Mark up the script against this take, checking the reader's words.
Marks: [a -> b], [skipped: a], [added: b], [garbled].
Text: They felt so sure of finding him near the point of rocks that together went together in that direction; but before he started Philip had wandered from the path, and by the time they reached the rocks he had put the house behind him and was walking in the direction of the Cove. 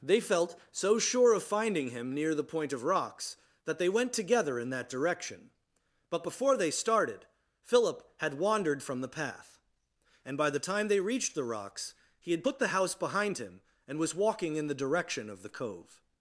They felt so sure of finding him near the point of rocks that [together -> they] went together in that direction; but before [he -> they] started Philip had wandered from the path, and by the time they reached the rocks he had put the house behind him and was walking in the direction of the Cove.